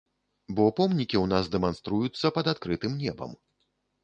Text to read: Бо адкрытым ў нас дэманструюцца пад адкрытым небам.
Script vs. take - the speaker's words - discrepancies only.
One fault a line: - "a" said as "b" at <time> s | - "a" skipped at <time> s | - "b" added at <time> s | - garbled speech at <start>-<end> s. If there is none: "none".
- "адкрытым" said as "помнікі" at 0.8 s